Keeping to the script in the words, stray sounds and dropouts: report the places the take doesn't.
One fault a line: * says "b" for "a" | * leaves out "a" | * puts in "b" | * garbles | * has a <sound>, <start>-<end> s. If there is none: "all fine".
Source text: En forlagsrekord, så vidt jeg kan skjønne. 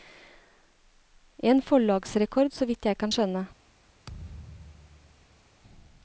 * has a thud, 4.1-5.5 s